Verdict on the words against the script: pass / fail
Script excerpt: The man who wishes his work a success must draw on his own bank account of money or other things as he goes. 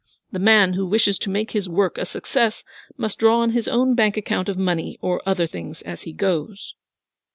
fail